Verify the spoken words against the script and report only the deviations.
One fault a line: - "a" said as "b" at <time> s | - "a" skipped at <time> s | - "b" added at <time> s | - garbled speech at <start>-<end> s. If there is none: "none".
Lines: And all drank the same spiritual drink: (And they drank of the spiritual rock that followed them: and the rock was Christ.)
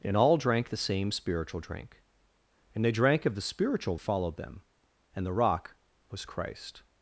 - "rock that" skipped at 4.0 s